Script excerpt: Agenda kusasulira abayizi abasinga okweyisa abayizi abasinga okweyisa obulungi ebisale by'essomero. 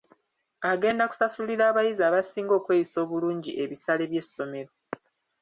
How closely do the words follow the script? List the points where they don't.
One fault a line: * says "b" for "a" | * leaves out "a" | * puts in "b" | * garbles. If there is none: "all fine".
* leaves out "abayizi abasinga okweyisa"